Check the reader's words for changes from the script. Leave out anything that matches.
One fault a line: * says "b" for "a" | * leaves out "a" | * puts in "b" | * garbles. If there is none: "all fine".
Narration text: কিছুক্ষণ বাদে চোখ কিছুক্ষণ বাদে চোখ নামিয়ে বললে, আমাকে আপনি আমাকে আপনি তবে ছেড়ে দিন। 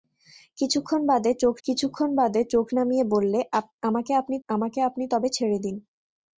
all fine